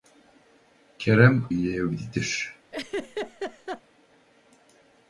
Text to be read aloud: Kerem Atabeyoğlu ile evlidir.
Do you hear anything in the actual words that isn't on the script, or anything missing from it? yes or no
yes